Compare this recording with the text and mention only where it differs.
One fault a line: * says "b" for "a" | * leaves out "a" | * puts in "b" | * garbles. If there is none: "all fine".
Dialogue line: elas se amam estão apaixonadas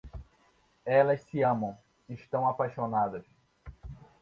all fine